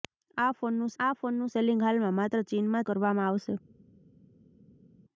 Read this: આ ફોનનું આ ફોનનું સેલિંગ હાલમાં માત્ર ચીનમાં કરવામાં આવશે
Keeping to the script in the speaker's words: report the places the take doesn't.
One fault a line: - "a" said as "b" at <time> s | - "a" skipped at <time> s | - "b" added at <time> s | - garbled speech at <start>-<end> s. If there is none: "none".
none